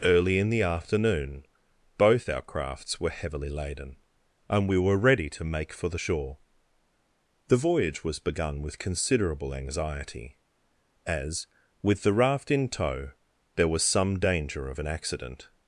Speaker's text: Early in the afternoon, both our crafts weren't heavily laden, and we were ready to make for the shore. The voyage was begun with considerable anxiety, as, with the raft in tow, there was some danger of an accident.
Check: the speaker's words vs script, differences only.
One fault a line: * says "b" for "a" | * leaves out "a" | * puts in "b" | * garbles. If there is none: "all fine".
* says "were" for "weren't"